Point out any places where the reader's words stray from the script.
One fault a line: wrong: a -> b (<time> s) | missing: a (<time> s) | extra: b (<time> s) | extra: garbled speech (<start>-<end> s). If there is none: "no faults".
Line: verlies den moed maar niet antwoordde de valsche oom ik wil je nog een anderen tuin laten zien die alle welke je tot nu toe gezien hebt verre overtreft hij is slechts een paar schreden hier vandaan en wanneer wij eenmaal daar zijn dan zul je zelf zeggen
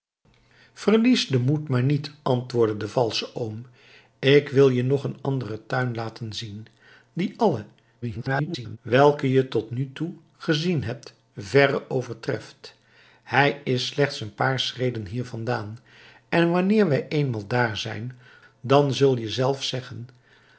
extra: garbled speech (8.0-8.8 s)